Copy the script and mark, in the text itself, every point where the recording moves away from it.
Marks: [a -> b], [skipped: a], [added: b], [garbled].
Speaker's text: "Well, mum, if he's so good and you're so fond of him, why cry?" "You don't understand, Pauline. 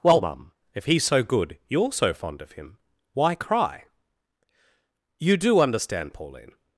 "Well, mum, if he's so good [skipped: and] you're so fond of him, why cry?" "You [don't -> do] understand, Pauline.